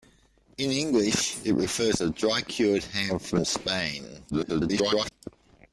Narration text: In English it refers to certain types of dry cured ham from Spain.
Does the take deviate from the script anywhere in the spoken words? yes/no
yes